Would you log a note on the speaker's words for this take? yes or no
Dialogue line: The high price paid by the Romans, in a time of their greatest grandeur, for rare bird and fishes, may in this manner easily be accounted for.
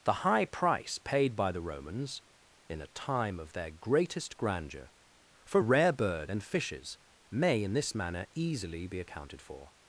no